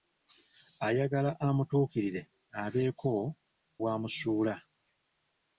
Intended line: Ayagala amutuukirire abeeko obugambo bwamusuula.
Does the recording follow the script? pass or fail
fail